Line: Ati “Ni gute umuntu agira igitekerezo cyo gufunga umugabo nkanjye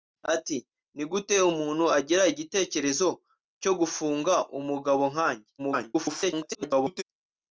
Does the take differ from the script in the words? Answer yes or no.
yes